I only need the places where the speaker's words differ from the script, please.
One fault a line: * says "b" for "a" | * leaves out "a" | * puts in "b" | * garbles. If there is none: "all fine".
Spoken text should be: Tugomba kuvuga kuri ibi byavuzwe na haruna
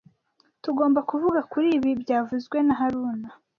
all fine